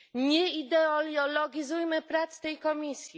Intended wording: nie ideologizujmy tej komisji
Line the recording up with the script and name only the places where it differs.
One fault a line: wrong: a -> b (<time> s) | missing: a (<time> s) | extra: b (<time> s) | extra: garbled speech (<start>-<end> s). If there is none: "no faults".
extra: prac (2.0 s)